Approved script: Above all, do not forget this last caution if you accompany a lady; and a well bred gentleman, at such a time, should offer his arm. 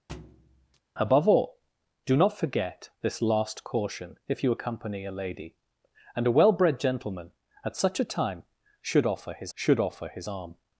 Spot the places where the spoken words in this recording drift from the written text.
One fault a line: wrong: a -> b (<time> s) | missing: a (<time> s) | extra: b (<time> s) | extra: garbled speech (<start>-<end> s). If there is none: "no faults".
extra: should offer his (9.5 s)